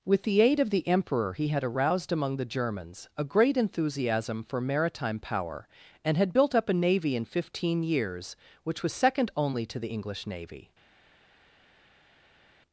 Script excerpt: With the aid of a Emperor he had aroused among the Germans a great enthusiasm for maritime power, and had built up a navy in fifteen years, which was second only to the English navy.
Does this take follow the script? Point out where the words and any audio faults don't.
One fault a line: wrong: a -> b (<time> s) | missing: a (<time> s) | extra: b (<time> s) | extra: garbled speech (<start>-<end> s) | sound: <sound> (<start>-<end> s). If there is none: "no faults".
wrong: a -> the (0.7 s)